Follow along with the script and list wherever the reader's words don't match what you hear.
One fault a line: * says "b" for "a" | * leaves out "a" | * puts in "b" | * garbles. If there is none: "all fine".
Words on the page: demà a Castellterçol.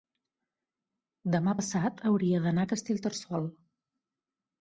* puts in "passat hauria d'anar"